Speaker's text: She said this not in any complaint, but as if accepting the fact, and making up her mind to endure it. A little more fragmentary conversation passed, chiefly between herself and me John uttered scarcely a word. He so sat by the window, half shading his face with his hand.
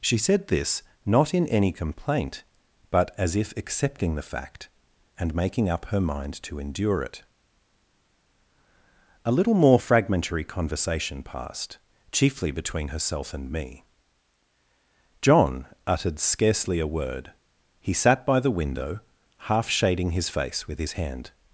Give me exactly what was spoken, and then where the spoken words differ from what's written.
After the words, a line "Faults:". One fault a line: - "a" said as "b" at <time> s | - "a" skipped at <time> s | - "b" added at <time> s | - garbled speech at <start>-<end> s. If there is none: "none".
She said this not in any complaint, but as if accepting the fact, and making up her mind to endure it. A little more fragmentary conversation passed, chiefly between herself and me John uttered scarcely a word. He sat by the window, half shading his face with his hand.
Faults:
- "so" skipped at 17.9 s